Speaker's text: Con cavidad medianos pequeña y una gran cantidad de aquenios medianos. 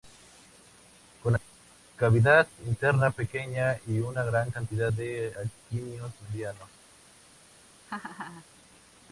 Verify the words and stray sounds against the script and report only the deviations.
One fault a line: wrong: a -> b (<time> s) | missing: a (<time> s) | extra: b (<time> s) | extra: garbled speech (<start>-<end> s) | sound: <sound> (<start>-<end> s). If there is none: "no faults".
wrong: medianos -> interna (2.6 s)
sound: laugh (7.9-8.5 s)